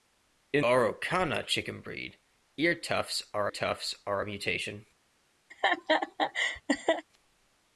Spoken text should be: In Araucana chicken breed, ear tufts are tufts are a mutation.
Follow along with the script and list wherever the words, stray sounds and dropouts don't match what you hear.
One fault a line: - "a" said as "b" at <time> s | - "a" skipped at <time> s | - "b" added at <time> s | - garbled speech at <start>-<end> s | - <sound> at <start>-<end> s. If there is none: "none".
- laugh at 5.5-7.0 s